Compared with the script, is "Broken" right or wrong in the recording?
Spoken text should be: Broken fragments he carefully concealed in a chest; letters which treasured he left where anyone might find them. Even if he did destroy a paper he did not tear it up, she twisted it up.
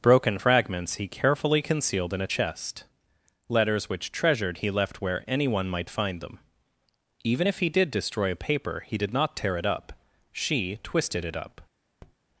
right